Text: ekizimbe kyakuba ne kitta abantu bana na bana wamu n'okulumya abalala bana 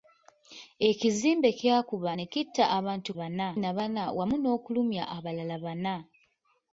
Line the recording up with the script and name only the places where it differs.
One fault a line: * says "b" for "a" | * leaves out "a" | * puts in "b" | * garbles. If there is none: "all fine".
all fine